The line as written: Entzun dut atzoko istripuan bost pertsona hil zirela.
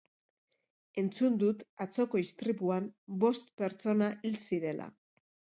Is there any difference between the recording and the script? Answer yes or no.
no